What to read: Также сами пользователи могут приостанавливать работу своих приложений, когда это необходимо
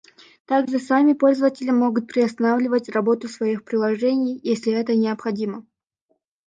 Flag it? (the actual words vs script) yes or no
yes